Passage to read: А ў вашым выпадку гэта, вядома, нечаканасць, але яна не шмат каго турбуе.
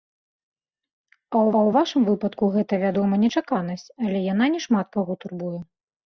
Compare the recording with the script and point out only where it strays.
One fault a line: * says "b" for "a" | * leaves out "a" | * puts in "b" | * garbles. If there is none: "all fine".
* puts in "ў"